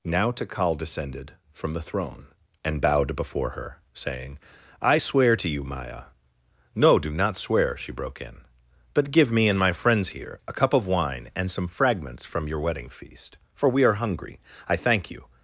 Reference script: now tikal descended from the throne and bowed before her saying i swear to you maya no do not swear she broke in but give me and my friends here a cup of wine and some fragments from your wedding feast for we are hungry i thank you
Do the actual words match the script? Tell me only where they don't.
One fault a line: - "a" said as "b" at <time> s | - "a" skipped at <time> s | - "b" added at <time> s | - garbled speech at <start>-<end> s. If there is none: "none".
none